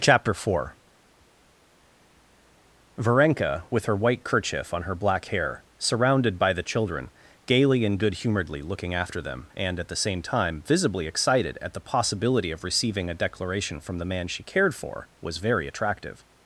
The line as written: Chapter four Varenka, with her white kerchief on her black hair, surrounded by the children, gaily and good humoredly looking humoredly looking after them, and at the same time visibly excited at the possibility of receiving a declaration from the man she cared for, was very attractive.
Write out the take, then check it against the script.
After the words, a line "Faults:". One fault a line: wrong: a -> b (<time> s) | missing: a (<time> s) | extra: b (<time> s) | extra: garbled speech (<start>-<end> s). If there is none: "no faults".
Chapter four Varenka, with her white kerchief on her black hair, surrounded by the children, gaily and good humoredly looking after them, and at the same time visibly excited at the possibility of receiving a declaration from the man she cared for, was very attractive.
Faults:
missing: humoredly looking (8.9 s)